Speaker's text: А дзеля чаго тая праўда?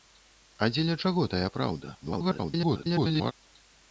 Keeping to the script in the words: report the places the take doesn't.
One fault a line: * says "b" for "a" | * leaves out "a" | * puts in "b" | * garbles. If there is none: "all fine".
* garbles